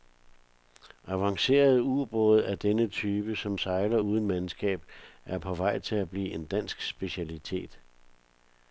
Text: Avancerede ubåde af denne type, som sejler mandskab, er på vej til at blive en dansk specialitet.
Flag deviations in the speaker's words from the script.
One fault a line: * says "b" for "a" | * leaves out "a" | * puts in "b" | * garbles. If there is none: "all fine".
* puts in "uden"